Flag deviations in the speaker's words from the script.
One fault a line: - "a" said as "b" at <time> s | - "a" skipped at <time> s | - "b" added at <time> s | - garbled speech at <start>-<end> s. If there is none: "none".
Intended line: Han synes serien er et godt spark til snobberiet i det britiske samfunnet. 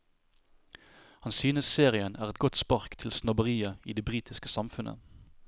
none